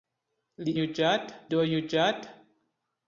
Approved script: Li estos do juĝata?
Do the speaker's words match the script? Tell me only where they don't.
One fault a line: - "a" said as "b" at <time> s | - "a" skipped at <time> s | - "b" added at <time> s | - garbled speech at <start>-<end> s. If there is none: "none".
- "estos" said as "juĝata" at 0.8 s